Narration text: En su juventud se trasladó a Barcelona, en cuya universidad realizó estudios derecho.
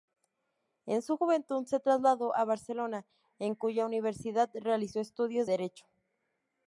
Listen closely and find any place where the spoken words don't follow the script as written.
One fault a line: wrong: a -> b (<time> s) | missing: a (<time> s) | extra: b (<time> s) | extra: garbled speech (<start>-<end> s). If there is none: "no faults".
no faults